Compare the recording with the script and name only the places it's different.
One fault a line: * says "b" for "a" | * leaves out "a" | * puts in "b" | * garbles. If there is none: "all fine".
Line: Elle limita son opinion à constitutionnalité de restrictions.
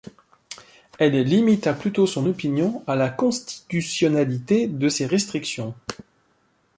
* puts in "plutôt"
* puts in "la"
* puts in "ces"